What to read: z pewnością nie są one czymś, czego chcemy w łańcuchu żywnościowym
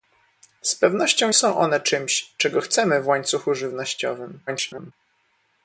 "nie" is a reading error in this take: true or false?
true